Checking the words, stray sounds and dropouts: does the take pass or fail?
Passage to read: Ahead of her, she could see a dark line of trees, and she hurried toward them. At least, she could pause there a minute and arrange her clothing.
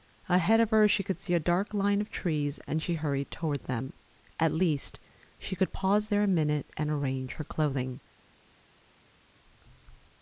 pass